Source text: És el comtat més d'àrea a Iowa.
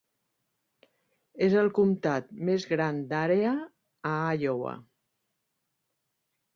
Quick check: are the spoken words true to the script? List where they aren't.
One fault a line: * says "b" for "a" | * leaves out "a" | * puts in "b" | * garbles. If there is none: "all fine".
* puts in "gran"